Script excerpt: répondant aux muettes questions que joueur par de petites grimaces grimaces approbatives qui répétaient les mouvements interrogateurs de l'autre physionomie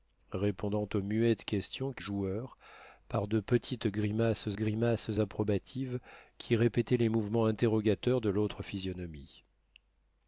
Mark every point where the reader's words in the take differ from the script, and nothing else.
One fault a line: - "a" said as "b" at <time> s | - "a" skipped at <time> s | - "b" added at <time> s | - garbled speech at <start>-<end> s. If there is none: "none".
none